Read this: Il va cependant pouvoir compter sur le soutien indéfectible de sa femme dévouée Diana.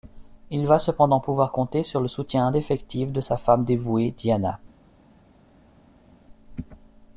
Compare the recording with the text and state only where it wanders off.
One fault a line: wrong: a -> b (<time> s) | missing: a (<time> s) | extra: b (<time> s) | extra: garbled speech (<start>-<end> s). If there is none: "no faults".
no faults